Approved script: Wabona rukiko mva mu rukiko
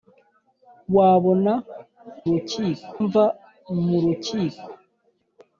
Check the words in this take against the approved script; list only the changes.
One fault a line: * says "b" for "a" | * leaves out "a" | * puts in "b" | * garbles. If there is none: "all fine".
all fine